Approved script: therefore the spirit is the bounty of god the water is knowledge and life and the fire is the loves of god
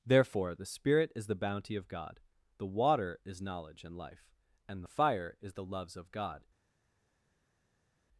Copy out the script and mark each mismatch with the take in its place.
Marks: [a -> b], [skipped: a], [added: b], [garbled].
therefore the spirit is the bounty of god the water is knowledge and life and the fire is the loves of god